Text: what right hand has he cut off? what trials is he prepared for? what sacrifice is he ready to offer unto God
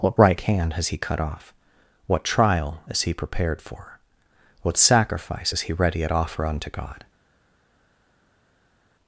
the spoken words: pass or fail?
fail